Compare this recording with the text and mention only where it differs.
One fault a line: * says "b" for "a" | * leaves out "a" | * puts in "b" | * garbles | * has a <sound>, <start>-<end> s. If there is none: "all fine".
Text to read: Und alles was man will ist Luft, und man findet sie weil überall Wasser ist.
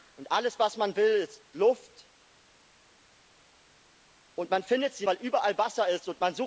all fine